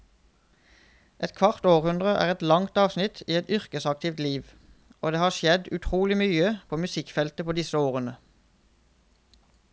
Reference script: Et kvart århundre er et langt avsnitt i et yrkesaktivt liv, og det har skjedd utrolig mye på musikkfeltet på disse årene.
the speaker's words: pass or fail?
pass